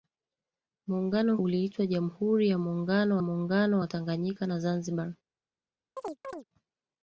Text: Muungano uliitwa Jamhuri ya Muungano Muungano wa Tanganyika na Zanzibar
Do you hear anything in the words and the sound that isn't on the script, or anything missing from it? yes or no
yes